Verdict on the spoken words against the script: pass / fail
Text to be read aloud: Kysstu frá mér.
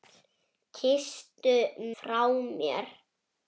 pass